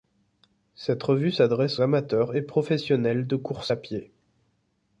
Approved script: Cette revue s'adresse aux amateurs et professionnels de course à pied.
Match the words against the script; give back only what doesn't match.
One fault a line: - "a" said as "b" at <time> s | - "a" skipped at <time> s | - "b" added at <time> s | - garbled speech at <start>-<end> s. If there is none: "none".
- "aux" skipped at 1.8 s